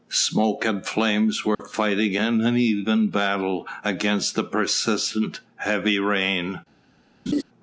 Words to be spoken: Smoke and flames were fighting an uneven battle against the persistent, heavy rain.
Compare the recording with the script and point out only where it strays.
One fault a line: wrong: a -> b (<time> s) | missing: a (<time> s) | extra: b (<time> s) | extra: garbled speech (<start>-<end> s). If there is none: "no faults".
no faults